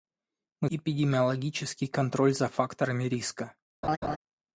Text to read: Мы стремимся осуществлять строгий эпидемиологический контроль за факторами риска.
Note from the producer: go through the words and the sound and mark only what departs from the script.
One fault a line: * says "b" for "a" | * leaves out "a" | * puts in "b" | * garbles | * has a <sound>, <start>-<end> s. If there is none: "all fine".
* leaves out "стремимся осуществлять строгий"
* has a laugh, 3.8-4.2 s